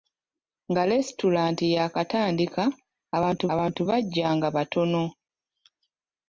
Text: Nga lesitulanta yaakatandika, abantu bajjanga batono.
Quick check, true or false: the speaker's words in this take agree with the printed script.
false